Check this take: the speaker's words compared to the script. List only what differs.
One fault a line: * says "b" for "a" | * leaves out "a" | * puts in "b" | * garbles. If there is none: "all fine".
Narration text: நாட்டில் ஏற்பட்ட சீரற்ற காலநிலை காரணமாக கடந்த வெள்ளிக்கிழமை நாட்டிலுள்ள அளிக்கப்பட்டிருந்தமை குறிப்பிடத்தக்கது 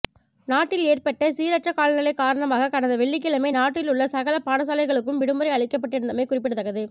* puts in "சகல பாடசாலைகளுக்கும் விடுமுறை"